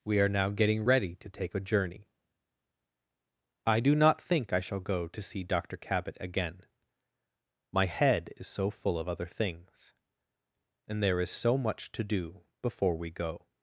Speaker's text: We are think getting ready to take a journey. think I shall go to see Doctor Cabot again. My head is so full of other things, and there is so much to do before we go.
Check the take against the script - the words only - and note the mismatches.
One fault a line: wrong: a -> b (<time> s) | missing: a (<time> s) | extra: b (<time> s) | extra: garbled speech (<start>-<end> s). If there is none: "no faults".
wrong: think -> now (0.3 s)
extra: I do not (3.7 s)